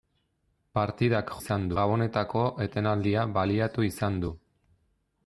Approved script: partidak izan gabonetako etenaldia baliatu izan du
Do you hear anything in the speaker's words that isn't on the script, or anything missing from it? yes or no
no